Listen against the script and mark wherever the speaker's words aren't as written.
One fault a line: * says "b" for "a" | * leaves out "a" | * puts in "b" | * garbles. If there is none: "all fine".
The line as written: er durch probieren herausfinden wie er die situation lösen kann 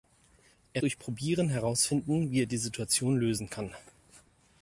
all fine